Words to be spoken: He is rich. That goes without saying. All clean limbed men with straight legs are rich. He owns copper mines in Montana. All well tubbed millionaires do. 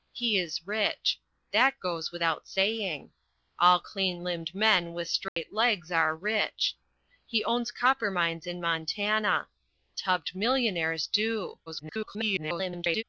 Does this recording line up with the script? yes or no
no